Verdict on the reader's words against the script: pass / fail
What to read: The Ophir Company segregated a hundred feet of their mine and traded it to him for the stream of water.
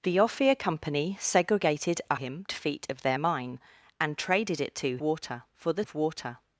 fail